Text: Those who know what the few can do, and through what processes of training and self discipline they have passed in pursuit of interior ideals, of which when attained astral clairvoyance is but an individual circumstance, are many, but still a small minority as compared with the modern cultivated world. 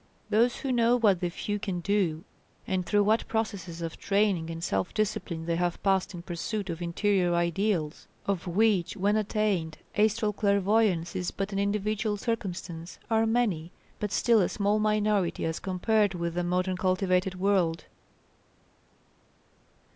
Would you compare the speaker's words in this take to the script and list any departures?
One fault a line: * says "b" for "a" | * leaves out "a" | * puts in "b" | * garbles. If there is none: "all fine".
all fine